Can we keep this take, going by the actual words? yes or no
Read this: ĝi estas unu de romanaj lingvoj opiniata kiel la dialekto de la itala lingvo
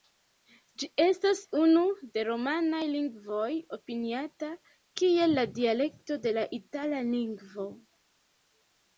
yes